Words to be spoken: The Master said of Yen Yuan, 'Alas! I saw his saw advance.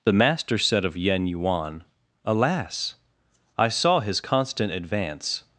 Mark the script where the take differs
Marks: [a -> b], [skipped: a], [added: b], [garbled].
The Master said of Yen Yuan, 'Alas! I saw his [saw -> constant] advance.